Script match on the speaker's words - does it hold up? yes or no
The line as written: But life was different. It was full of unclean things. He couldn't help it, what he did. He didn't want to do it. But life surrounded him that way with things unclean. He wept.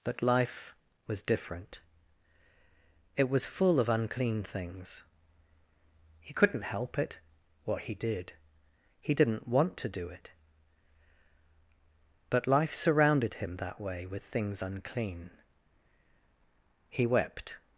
yes